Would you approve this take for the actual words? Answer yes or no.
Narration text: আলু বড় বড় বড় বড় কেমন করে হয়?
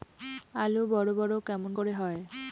no